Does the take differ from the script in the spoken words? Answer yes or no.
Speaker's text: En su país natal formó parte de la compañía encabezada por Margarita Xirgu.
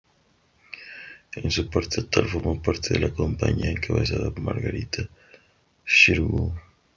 yes